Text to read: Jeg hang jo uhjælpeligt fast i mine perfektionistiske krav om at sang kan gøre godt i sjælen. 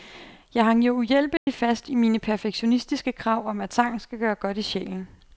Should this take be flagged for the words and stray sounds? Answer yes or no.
yes